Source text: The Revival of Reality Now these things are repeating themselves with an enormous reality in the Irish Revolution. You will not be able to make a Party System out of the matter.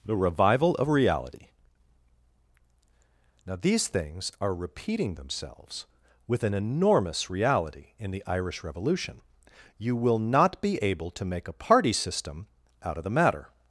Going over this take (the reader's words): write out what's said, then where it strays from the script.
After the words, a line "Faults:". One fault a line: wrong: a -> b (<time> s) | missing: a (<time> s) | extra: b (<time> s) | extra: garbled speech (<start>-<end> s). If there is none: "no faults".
The Revival of Reality Now these things are repeating themselves with an enormous reality in the Irish Revolution. You will not be able to make a Party System out of the matter.
Faults:
no faults